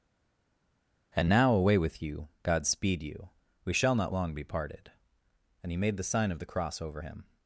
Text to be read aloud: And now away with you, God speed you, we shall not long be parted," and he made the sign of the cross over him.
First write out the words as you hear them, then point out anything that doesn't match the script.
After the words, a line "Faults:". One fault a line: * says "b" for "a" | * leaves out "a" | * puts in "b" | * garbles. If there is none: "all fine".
And now away with you, God speed you, we shall not long be parted," and he made the sign of the cross over him.
Faults:
all fine